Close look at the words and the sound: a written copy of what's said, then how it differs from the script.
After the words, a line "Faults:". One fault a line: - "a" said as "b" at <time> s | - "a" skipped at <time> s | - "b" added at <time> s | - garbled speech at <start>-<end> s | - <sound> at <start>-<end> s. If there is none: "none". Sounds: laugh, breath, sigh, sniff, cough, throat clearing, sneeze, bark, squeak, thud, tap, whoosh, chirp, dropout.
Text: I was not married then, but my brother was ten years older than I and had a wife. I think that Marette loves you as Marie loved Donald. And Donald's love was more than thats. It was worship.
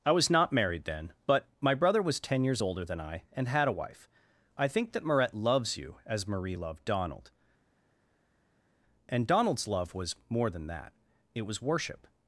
I was not married then, but my brother was ten years older than I and had a wife. I think that Marette loves you as Marie loved Donald. And Donald's love was more than that. It was worship.
Faults:
- "thats" said as "that" at 10.7 s